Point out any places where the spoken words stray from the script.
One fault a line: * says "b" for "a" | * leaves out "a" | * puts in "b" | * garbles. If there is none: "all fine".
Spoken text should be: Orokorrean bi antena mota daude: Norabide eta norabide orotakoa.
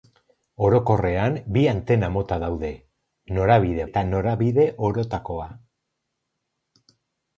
all fine